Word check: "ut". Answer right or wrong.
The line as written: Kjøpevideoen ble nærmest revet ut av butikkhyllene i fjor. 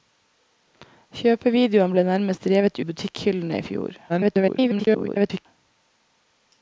wrong